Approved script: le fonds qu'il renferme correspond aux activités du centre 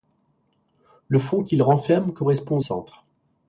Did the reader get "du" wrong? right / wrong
wrong